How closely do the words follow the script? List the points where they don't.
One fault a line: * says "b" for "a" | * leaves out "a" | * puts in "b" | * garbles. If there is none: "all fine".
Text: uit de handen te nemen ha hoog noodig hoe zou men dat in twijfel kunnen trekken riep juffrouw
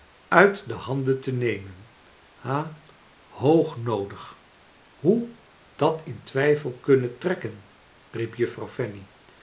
* leaves out "zou men"